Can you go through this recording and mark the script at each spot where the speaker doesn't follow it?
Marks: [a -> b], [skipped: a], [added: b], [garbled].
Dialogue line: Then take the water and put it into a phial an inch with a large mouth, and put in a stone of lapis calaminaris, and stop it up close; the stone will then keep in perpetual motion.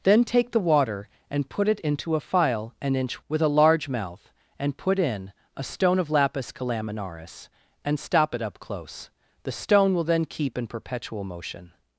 Then take the water and put it into a phial an inch with a large mouth, and put in a stone of lapis calaminaris, and stop it up close; the stone will then keep in perpetual motion.